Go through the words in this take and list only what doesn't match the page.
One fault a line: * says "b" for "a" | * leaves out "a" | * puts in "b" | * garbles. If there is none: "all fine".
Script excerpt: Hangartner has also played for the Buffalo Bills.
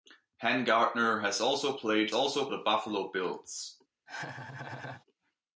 * says "also" for "for"